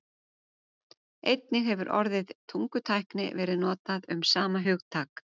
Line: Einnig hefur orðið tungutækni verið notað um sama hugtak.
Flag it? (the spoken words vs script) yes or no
no